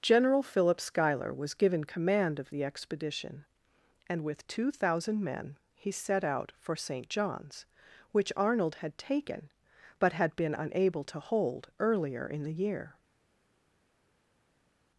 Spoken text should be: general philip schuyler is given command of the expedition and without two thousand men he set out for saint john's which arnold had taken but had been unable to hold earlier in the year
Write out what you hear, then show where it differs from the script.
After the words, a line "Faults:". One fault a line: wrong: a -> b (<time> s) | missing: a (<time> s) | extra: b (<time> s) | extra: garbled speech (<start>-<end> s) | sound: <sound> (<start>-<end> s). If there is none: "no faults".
general philip schuyler was given command of the expedition and with two thousand men he set out for saint john's which arnold had taken but had been unable to hold earlier in the year
Faults:
wrong: is -> was (1.3 s)
wrong: without -> with (4.2 s)